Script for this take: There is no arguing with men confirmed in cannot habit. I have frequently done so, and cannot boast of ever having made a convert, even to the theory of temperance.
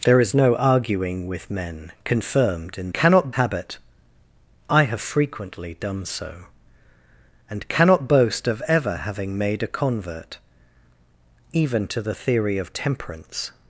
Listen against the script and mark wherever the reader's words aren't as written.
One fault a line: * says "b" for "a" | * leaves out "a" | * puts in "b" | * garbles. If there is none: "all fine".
all fine